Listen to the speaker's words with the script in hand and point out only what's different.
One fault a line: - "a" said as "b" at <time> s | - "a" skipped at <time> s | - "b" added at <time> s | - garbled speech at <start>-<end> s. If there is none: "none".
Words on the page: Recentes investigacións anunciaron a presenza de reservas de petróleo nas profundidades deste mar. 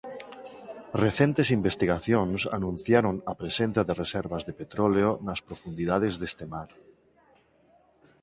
none